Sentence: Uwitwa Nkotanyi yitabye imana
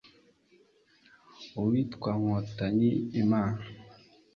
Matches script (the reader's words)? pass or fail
fail